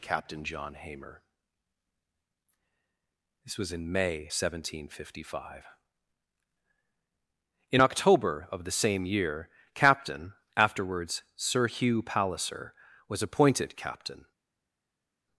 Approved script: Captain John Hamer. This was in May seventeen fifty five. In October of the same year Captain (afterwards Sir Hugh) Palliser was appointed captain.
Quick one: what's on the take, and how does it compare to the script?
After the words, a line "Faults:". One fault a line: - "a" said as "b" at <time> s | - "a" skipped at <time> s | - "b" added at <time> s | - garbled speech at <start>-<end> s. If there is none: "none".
Captain John Hamer. This was in May seventeen fifty five. In October of the same year Captain (afterwards Sir Hugh) Palliser was appointed captain.
Faults:
none